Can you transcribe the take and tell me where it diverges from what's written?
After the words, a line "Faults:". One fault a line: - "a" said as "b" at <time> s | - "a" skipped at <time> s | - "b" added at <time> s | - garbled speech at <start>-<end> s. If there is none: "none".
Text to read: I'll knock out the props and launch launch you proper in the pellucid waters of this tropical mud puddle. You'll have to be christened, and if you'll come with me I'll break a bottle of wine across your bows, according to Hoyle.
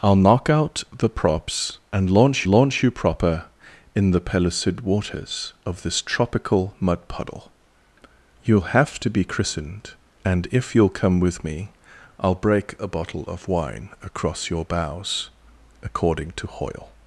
I'll knock out the props and launch launch you proper in the pellucid waters of this tropical mud puddle. You'll have to be christened, and if you'll come with me I'll break a bottle of wine across your bows, according to Hoyle.
Faults:
none